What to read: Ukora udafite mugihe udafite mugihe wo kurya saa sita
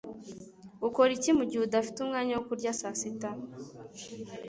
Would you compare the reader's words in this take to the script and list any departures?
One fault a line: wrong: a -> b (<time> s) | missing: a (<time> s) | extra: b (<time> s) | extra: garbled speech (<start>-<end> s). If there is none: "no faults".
wrong: udafite -> iki (1.2 s)
wrong: mugihe -> umwanya (2.0 s)